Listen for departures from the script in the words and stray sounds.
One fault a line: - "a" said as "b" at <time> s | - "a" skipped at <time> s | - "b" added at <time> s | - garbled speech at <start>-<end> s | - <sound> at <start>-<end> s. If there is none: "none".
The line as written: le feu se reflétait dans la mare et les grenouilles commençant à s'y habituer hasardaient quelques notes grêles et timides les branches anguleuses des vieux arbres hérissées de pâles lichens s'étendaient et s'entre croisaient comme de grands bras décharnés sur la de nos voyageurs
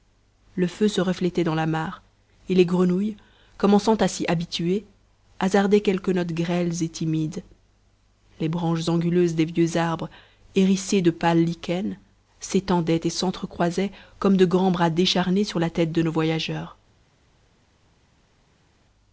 - "tête" added at 15.7 s